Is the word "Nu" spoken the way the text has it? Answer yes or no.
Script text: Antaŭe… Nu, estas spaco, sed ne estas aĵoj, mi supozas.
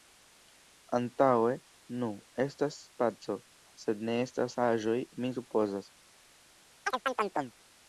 yes